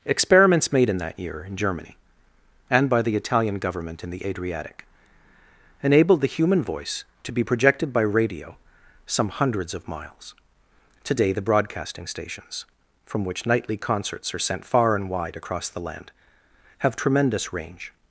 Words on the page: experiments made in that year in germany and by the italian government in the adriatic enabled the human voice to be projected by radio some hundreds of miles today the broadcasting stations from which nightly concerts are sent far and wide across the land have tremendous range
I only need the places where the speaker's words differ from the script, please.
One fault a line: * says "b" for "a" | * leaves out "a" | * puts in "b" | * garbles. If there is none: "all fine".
all fine